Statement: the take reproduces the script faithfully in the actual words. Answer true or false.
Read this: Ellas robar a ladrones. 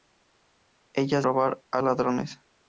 true